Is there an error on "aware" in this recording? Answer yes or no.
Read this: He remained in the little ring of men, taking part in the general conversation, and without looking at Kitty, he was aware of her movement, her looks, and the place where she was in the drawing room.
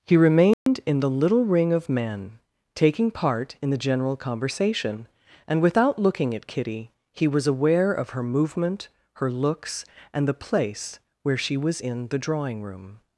no